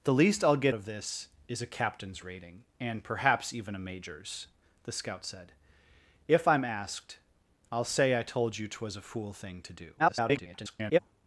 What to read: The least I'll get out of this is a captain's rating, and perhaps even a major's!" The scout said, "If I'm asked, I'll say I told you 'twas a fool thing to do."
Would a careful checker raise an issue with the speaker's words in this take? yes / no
yes